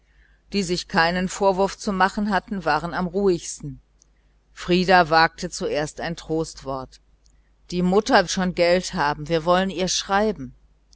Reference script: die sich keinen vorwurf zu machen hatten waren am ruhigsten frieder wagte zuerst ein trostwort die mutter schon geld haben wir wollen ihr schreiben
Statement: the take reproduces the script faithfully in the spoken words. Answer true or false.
true